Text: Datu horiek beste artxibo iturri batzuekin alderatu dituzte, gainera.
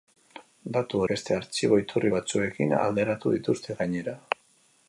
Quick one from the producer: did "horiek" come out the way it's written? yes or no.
no